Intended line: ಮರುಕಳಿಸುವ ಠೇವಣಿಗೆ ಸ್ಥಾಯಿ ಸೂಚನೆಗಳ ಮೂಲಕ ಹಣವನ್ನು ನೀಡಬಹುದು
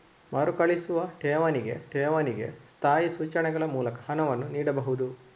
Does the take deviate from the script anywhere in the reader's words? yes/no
yes